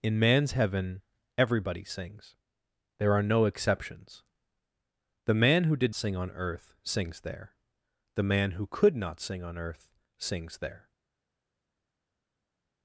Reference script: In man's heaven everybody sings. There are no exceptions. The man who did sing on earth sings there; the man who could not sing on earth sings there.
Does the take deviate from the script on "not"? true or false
false